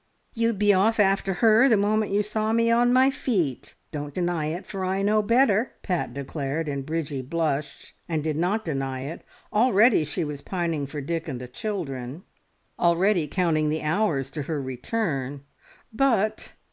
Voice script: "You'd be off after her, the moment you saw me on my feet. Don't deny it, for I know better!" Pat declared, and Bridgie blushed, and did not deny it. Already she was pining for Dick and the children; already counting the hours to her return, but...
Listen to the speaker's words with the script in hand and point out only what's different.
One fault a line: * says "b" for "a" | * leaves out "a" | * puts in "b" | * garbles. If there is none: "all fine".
all fine